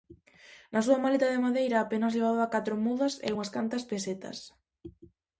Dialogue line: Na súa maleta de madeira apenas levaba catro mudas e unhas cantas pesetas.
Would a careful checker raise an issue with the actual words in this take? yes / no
no